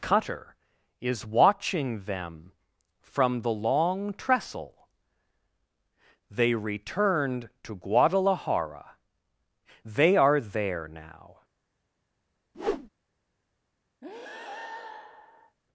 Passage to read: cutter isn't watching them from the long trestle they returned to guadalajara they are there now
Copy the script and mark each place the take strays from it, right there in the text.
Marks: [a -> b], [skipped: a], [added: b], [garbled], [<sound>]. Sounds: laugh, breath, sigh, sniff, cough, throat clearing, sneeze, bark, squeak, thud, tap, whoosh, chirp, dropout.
cutter [isn't -> is] watching them from the long trestle they returned to guadalajara they are there now [whoosh] [breath]